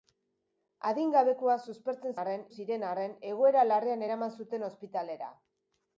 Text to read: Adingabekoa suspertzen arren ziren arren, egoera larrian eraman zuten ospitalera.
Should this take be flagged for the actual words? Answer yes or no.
no